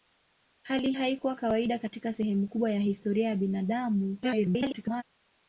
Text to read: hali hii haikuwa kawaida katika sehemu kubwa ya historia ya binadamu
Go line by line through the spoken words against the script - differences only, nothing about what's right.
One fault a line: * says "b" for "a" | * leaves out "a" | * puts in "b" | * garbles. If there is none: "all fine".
* leaves out "hii"
* garbles